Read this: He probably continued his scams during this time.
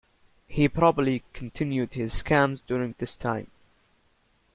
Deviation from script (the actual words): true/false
false